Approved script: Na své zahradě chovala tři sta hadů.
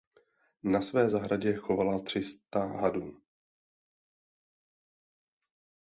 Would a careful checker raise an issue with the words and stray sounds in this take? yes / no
no